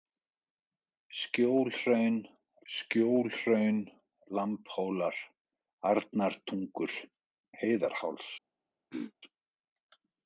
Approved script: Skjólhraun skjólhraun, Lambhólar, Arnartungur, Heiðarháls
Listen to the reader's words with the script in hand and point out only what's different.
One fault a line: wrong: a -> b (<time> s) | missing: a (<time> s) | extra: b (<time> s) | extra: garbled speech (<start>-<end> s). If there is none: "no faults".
no faults